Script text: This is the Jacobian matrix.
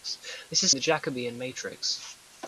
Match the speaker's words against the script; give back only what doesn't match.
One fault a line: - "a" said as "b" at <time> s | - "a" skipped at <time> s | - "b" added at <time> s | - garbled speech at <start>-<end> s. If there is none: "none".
none